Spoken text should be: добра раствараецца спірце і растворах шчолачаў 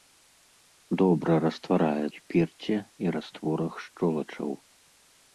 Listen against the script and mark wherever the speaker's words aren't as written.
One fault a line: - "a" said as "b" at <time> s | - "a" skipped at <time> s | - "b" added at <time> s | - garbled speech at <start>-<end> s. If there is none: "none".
none